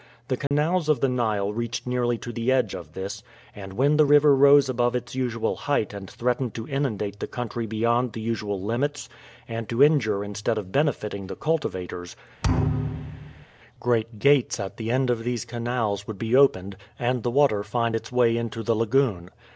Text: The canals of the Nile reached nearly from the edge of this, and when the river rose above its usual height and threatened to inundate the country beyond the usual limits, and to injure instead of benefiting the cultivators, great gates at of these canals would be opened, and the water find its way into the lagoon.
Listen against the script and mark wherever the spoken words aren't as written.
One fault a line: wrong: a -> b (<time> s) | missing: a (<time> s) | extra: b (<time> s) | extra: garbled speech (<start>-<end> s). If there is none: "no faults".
wrong: from -> to (2.2 s)
extra: the end (14.8 s)